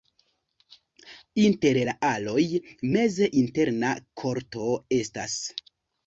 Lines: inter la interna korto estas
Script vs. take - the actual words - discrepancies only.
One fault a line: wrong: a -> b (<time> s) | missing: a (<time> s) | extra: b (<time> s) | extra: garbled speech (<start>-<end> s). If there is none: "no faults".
extra: aloj meze (2.1 s)